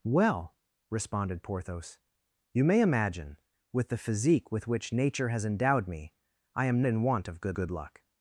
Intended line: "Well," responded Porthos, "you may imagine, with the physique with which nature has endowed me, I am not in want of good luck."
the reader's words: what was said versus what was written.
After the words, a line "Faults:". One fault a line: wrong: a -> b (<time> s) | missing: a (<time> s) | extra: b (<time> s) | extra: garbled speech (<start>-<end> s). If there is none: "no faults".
"Well," responded Porthos, "you may imagine, with the physique with which nature has endowed me, I am in want of good good luck."
Faults:
missing: not (6.8 s)
extra: good (7.5 s)